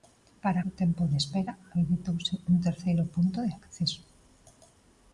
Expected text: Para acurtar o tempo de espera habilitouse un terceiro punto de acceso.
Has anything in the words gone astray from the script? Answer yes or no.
yes